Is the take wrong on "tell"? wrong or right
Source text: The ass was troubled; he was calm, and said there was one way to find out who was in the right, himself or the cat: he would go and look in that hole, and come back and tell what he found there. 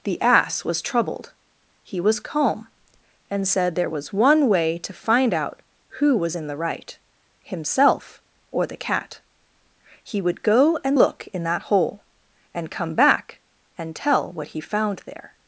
right